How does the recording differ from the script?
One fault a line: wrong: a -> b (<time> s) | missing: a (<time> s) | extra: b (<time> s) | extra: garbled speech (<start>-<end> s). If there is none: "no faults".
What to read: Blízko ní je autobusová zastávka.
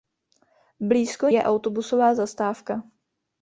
missing: ní (1.3 s)